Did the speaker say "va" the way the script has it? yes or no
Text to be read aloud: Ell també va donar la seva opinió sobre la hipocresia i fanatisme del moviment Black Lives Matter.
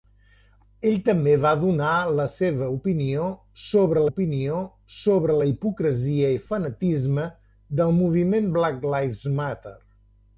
yes